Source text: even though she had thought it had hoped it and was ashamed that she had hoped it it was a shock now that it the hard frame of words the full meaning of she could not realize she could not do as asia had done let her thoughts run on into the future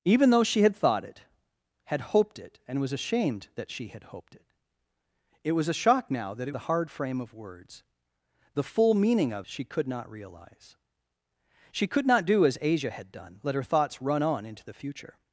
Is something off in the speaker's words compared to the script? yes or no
no